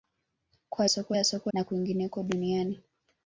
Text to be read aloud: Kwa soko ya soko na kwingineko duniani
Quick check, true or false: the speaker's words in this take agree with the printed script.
true